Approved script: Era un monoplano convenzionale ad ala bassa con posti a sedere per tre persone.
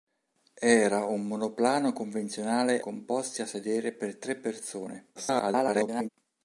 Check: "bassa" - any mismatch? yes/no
yes